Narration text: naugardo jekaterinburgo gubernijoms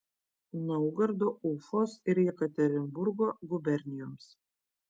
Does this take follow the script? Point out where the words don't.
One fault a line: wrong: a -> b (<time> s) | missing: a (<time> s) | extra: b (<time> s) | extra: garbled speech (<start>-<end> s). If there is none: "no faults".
extra: ufos ir (1.5 s)